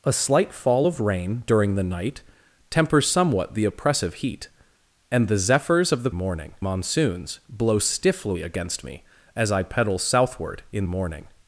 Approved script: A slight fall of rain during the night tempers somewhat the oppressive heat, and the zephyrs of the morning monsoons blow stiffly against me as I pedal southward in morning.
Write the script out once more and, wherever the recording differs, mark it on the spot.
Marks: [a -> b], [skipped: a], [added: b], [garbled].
A slight fall of rain during the night tempers somewhat the oppressive heat, and the zephyrs of the morning monsoons blow stiffly against me as I pedal southward in morning.